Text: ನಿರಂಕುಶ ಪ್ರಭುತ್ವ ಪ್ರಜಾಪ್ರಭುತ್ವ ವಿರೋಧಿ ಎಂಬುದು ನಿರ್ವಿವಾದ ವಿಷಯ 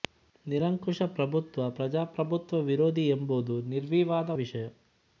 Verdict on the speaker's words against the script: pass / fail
pass